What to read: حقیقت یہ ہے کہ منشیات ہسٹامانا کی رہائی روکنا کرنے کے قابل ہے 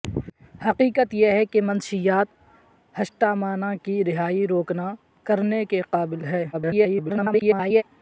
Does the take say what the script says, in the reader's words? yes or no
no